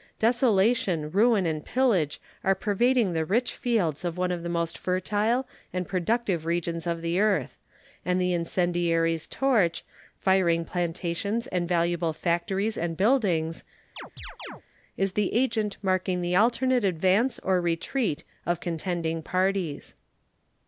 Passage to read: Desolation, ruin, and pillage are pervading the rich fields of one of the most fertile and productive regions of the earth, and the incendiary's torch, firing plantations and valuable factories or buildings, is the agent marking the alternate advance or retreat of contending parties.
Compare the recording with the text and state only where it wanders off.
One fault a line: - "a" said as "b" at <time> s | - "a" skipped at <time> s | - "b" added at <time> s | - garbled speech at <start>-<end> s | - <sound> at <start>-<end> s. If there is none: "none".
- "or" said as "and" at 12.8 s
- chirp at 14.0-14.6 s